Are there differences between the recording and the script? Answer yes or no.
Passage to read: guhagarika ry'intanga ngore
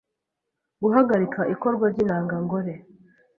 yes